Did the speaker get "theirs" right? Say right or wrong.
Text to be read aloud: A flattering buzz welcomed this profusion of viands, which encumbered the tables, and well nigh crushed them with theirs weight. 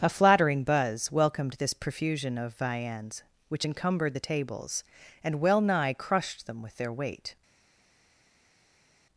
wrong